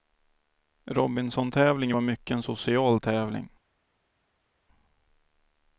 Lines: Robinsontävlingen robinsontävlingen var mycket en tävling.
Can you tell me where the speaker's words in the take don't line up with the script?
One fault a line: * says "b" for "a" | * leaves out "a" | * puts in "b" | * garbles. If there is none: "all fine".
* leaves out "robinsontävlingen"
* puts in "social"